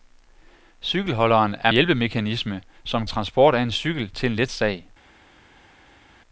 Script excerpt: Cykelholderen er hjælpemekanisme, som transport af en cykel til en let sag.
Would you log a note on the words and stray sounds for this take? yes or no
no